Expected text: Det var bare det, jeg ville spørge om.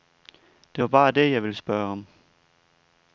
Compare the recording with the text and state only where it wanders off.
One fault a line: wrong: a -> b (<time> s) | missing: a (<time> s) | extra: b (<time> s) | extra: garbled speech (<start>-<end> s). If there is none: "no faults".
no faults